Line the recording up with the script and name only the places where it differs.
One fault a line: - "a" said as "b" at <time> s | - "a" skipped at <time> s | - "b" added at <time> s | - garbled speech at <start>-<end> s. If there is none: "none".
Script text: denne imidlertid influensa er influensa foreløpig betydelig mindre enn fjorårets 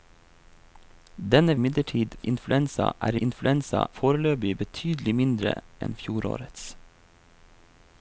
none